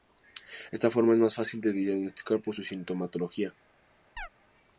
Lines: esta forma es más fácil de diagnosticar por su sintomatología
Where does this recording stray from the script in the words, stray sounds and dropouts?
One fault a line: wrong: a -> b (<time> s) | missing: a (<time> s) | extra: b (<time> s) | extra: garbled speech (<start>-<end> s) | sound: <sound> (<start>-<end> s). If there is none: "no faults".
sound: chirp (4.2-4.3 s)